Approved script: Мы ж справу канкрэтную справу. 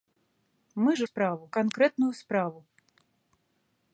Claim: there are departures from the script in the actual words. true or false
false